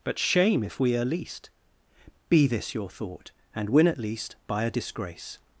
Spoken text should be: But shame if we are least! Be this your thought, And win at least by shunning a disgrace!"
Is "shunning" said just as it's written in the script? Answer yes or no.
no